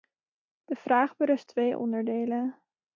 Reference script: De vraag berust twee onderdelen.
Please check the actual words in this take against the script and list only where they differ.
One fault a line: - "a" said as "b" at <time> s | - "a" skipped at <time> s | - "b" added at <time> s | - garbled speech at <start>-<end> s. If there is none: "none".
none